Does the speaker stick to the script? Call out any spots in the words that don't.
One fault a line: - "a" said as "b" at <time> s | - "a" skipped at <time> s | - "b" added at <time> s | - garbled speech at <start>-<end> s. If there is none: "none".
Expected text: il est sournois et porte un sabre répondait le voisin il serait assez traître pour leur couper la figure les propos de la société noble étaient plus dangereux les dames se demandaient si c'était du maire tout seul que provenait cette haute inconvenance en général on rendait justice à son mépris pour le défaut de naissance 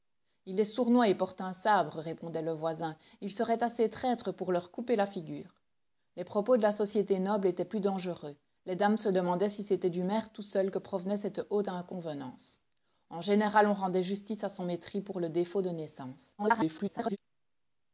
- garbled speech at 16.4-17.2 s